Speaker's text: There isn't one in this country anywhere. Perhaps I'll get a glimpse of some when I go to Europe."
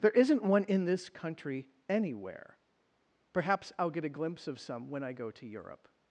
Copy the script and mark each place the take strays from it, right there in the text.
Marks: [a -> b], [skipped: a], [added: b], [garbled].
There isn't one in this country anywhere. Perhaps I'll get a glimpse of some when I go to Europe."